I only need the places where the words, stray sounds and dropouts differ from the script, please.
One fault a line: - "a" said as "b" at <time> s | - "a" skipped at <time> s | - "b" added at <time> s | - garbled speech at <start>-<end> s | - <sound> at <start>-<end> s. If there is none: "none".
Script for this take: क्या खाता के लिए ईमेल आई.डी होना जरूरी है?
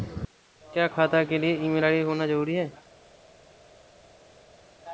none